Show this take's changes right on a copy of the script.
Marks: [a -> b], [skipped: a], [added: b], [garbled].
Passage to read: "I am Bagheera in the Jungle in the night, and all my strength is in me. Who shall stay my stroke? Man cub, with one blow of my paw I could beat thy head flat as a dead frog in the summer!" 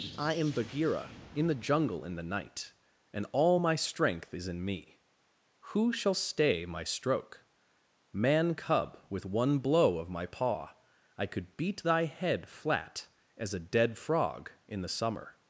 "I am Bagheera in the Jungle in the night, and all my strength is in me. Who shall stay my stroke? Man cub, with one blow of my paw I could beat thy head flat as a dead frog in the summer!"